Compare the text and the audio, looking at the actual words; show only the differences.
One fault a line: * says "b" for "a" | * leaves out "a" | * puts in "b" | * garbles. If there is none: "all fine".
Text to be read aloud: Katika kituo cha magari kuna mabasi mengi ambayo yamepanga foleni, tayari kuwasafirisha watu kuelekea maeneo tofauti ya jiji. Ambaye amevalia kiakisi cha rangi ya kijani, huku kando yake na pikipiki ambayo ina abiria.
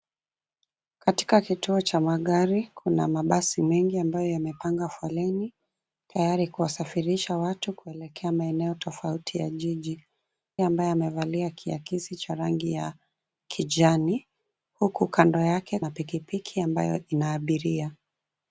all fine